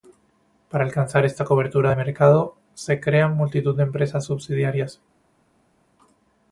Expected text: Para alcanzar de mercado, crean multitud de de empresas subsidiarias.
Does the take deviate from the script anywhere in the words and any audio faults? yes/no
yes